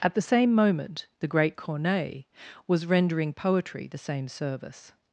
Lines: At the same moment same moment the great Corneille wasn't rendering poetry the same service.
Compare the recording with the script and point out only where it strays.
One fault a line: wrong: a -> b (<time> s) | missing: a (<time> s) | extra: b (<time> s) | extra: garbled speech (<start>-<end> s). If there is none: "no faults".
missing: same moment (1.1 s)
wrong: wasn't -> was (2.7 s)